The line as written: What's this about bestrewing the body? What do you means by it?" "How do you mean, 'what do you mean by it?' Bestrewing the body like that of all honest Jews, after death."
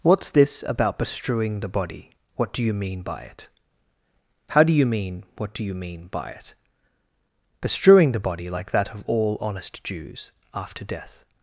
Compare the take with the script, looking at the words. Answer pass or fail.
fail